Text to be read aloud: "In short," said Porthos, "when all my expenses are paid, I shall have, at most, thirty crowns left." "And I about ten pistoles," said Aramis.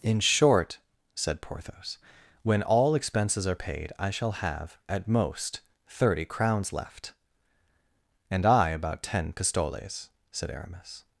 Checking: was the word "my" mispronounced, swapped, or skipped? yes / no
yes